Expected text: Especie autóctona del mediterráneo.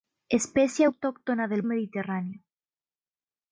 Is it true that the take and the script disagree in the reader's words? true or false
false